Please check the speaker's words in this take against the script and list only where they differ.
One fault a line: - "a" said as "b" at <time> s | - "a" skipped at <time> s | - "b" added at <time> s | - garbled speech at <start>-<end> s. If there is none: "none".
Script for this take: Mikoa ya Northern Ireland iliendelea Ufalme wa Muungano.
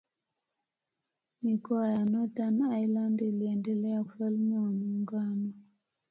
none